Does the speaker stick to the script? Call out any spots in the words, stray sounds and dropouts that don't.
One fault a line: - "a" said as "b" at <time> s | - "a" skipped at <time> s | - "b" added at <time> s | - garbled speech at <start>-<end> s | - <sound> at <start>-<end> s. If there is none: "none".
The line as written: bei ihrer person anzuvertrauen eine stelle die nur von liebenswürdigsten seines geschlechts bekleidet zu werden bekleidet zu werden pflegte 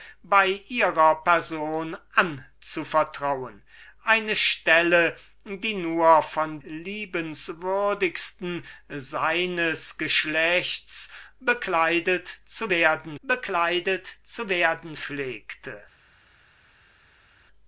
none